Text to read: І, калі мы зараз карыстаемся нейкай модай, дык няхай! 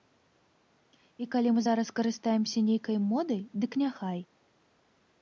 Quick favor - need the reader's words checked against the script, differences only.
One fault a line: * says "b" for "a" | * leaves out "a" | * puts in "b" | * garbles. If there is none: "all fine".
all fine